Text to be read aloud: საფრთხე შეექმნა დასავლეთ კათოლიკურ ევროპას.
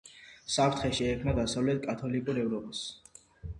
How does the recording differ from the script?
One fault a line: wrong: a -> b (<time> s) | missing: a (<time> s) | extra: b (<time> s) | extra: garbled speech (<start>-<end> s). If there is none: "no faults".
no faults